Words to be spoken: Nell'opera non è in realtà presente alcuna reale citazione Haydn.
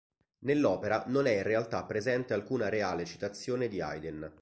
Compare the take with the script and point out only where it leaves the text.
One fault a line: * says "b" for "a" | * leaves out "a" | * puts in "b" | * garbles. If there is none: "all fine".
* puts in "di"